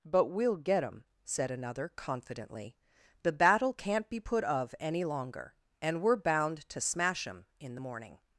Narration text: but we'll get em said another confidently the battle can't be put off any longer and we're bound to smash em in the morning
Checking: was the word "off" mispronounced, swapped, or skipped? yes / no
yes